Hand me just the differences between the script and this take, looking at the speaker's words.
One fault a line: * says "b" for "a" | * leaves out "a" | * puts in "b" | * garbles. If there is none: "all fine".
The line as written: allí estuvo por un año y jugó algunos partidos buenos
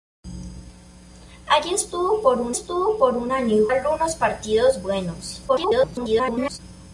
* puts in "estuvo por un"
* leaves out "jugó"
* garbles